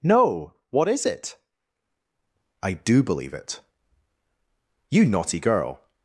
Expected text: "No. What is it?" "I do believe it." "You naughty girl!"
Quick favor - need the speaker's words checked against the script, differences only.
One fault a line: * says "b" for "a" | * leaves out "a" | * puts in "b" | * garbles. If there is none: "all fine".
all fine